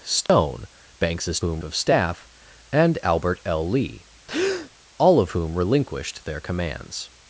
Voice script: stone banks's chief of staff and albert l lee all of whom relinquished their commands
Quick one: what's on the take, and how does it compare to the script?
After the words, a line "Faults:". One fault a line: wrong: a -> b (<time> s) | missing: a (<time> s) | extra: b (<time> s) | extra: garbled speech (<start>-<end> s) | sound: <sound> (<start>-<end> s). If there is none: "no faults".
stone banks's whom of staff and albert l lee all of whom relinquished their commands
Faults:
sound: dropout (0.3-0.3 s)
wrong: chief -> whom (1.4 s)
sound: breath (4.3-4.7 s)